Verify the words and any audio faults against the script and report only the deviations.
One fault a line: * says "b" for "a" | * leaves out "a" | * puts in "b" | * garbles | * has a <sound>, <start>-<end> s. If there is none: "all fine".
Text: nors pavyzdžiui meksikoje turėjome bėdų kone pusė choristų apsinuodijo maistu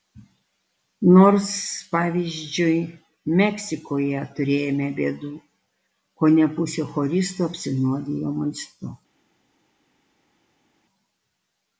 all fine